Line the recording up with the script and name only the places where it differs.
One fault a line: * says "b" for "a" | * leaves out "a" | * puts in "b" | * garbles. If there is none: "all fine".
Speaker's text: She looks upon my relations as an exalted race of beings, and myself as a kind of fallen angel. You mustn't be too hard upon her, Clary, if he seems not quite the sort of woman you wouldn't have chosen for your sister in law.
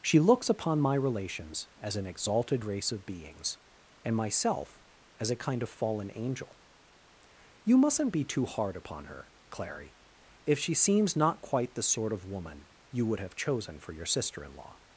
* says "she" for "he"
* says "would" for "wouldn't"